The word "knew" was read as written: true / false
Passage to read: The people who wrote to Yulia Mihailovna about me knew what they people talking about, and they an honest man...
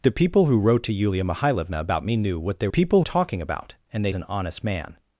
true